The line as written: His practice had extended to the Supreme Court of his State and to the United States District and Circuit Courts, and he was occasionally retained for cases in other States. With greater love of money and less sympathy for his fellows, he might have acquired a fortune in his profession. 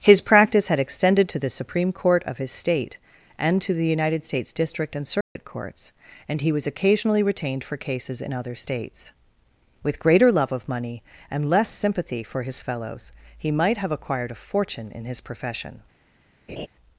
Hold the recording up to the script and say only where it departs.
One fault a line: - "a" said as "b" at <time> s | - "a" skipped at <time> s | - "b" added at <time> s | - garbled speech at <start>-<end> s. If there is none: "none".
none